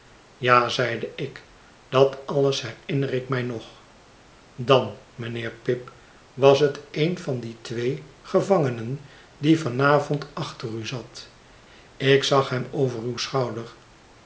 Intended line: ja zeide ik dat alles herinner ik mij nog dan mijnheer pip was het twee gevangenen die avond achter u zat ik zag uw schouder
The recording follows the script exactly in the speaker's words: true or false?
false